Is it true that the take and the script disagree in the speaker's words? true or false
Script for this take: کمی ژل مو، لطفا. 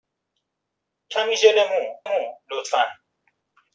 true